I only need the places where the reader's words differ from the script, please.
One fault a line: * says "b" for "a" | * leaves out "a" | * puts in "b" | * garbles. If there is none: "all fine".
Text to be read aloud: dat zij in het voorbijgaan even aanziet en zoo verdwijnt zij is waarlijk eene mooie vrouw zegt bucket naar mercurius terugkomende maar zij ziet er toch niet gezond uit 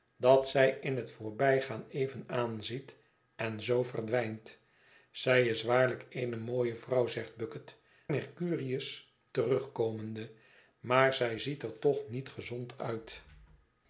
* leaves out "naar"